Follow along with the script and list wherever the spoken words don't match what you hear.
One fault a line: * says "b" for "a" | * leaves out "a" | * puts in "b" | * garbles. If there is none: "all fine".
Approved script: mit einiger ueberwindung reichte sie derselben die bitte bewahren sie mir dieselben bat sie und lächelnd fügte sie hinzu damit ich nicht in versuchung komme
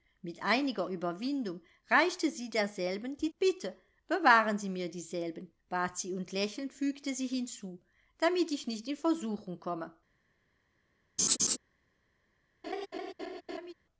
all fine